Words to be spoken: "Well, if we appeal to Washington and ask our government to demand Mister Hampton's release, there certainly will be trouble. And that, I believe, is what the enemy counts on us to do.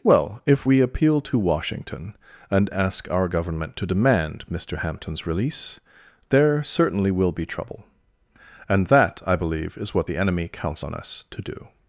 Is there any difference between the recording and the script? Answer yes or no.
no